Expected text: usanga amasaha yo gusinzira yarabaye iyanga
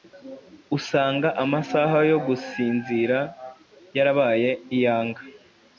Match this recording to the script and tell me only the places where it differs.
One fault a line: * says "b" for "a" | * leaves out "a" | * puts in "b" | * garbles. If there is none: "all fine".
all fine